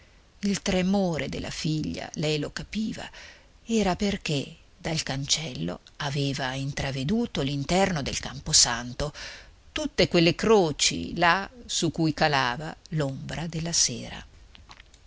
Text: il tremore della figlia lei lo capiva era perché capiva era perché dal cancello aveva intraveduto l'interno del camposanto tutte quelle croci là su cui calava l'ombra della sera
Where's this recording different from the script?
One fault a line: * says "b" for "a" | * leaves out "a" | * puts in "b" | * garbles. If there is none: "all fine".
* leaves out "capiva era perché"